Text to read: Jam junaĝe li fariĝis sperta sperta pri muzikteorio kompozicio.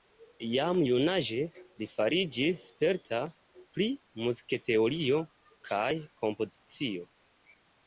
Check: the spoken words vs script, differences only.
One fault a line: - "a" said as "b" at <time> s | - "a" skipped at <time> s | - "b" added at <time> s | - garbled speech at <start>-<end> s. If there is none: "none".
- "sperta" skipped at 3.2 s
- "kaj" added at 5.7 s